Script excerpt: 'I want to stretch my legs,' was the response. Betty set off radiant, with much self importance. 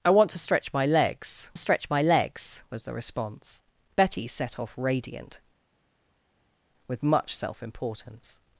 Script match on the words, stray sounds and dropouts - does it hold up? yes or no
no